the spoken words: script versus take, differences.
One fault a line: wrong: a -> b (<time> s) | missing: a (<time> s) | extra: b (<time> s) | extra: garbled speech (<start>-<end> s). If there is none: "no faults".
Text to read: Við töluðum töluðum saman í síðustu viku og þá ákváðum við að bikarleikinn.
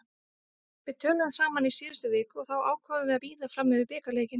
missing: töluðum (1.3 s)
extra: bíða fram yfir (3.3 s)